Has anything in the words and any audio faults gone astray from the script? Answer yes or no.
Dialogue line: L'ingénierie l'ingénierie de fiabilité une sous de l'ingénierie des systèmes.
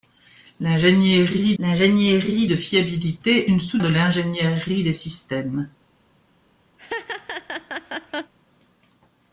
yes